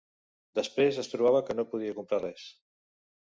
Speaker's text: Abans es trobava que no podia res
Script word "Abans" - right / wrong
wrong